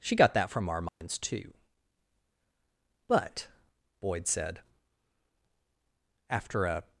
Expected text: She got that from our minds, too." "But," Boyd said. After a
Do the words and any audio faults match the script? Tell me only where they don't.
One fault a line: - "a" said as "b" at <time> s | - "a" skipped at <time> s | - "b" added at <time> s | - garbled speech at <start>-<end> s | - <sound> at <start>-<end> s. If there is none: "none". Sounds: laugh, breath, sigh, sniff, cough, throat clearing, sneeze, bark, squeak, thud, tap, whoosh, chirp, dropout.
- dropout at 0.9-1.0 s